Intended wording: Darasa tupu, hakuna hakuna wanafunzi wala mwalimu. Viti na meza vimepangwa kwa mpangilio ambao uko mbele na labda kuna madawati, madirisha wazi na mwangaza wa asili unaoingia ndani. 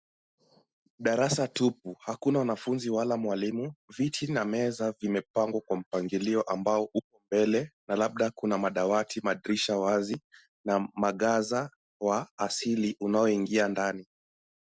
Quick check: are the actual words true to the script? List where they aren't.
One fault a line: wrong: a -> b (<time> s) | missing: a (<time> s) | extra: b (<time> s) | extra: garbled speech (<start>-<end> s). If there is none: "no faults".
missing: hakuna (2.4 s)